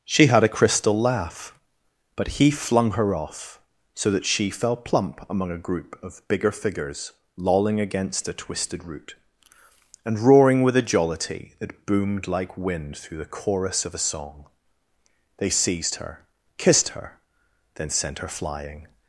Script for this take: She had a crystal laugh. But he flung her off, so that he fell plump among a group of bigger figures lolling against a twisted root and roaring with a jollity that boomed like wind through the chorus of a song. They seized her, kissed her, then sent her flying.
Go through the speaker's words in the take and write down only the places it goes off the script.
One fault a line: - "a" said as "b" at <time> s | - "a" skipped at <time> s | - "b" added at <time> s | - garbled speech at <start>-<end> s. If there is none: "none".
- "he" said as "she" at 4.3 s